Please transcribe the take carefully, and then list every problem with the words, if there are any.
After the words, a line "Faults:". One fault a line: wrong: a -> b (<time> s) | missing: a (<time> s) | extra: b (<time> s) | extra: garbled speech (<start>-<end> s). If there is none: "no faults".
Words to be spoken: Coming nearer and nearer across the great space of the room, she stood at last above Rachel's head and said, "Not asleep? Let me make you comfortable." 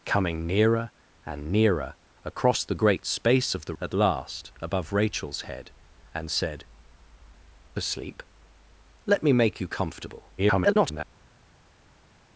Coming nearer and nearer across the great space of the at last above Rachel's head and said, "Asleep? Let me make you comfortable." [garbled]
Faults:
missing: room she stood (3.8 s)
missing: Not (6.7 s)
extra: garbled speech (10.4-11.0 s)